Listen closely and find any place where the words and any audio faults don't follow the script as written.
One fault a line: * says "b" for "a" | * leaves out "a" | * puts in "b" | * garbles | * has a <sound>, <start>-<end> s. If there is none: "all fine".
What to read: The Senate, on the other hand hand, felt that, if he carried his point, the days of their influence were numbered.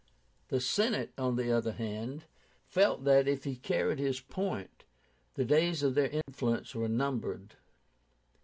* leaves out "hand"
* has a dropout, 6.2-6.3 s